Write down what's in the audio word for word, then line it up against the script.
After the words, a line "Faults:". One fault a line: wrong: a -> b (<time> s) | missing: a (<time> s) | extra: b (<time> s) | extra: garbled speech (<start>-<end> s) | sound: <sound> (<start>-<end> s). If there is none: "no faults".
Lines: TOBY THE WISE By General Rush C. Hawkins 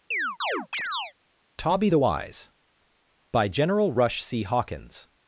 TOBY THE WISE By General Rush C. Hawkins
Faults:
sound: chirp (0.1-1.1 s)